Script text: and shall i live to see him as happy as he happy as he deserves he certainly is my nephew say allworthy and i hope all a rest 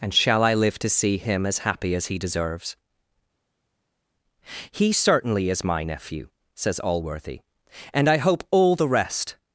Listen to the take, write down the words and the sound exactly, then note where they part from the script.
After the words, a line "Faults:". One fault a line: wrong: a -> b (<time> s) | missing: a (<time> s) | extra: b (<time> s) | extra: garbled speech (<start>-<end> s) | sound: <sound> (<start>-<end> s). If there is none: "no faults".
and shall i live to see him as happy as he deserves he certainly is my nephew says allworthy and i hope all the rest
Faults:
missing: happy as he (2.2 s)
wrong: say -> says (6.5 s)
wrong: a -> the (8.8 s)